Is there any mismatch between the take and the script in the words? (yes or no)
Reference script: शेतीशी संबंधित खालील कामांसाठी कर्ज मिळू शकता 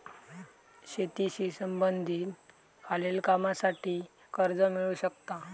no